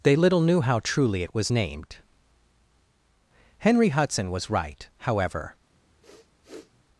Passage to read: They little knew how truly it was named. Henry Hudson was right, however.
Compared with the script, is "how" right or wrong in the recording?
right